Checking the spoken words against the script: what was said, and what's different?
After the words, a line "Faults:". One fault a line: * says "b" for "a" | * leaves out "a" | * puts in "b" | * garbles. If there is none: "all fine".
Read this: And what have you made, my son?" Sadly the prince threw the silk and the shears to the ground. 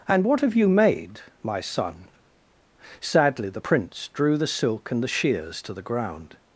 And what have you made, my son?" Sadly the prince drew the silk and the shears to the ground.
Faults:
* says "drew" for "threw"